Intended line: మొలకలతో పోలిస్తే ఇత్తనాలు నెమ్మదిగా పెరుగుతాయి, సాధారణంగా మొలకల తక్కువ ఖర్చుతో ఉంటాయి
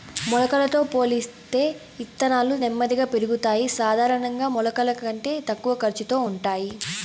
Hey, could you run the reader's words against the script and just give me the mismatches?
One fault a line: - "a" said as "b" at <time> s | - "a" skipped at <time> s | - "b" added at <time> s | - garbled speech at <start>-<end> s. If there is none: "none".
- "కంటే" added at 5.0 s